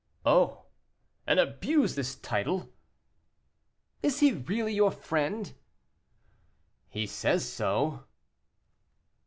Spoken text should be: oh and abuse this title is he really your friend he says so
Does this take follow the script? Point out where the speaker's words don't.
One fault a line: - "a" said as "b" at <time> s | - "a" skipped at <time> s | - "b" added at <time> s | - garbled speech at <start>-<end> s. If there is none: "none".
none